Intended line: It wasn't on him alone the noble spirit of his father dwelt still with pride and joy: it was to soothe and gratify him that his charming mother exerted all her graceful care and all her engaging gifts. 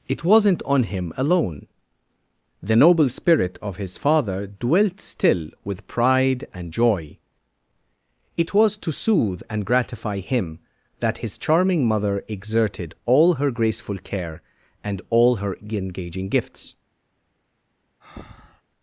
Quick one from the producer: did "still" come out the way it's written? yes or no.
yes